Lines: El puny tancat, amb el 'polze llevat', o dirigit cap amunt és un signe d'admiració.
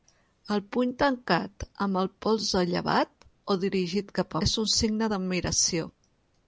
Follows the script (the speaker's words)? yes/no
no